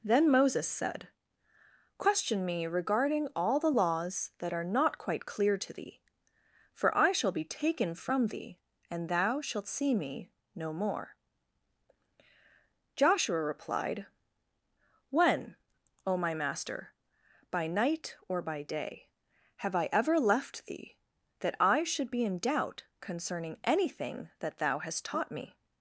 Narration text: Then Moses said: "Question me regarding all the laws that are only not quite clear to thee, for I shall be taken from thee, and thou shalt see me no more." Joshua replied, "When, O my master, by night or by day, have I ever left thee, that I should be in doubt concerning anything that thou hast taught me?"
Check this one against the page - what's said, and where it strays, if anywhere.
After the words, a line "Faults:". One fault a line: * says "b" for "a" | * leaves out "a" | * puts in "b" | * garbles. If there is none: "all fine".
Then Moses said: "Question me regarding all the laws that are not quite clear to thee, for I shall be taken from thee, and thou shalt see me no more." Joshua replied, "When, O my master, by night or by day, have I ever left thee, that I should be in doubt concerning anything that thou hast taught me?"
Faults:
* leaves out "only"